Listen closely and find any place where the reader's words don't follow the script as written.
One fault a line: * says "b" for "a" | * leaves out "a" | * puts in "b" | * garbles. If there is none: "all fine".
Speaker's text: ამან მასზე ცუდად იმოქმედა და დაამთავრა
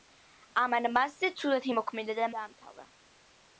all fine